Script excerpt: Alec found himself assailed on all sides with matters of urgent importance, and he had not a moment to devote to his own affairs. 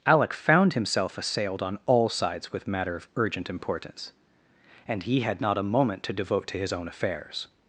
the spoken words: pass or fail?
fail